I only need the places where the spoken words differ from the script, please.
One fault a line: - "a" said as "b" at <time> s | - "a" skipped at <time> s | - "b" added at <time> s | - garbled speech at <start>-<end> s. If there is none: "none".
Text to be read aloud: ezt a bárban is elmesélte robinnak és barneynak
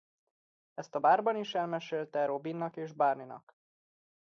none